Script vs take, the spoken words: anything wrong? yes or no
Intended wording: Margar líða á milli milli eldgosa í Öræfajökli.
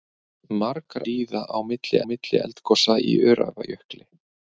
no